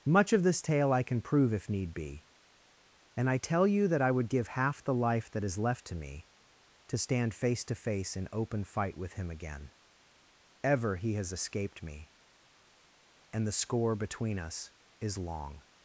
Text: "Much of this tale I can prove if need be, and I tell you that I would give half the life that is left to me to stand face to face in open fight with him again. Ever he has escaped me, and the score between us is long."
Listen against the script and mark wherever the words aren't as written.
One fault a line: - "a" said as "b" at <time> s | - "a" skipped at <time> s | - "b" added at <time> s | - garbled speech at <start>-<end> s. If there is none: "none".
none